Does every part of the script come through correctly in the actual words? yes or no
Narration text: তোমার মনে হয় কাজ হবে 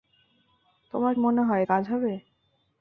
yes